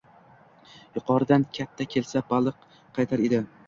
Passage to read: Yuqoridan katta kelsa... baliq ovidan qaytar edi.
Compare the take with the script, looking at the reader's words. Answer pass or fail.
fail